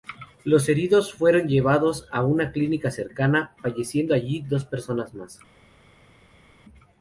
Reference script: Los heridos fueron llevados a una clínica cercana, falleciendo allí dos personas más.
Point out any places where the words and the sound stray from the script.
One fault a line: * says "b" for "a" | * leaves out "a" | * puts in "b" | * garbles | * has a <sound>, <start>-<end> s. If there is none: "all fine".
all fine